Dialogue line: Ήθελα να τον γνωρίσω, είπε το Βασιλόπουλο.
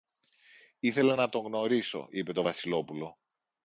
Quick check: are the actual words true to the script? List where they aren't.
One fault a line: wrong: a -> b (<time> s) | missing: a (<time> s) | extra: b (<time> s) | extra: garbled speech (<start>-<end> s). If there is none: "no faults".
no faults